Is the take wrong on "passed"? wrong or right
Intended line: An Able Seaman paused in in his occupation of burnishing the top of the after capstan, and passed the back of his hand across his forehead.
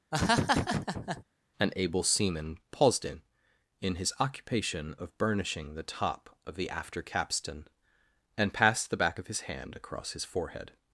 right